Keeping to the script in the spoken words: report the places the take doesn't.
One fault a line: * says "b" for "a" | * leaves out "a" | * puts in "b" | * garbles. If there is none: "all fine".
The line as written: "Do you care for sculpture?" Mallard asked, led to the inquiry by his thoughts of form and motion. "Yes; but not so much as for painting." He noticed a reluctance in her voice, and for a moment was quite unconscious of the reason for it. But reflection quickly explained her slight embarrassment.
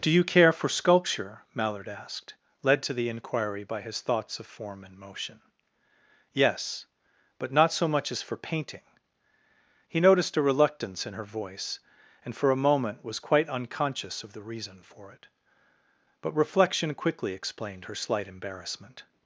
all fine